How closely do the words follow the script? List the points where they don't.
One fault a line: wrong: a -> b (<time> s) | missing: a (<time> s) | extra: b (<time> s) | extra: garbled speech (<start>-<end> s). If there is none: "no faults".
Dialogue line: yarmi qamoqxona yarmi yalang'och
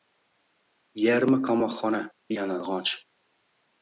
missing: yarmi (2.0 s)